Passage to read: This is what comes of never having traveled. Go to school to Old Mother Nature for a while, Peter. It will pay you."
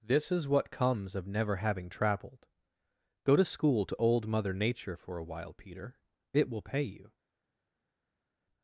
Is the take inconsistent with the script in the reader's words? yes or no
no